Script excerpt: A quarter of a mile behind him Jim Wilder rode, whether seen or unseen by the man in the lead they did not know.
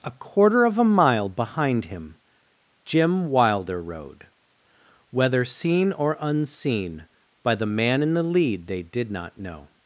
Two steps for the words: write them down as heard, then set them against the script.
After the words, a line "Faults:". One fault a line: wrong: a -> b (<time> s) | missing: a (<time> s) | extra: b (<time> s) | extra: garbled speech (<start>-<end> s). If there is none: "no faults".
A quarter of a mile behind him Jim Wilder rode, whether seen or unseen by the man in the lead they did not know.
Faults:
no faults